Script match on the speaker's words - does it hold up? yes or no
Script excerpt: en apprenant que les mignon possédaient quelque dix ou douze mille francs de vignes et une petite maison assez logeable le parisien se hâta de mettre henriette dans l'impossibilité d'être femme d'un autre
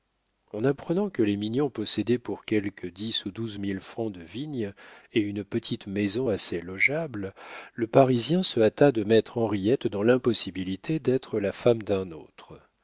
no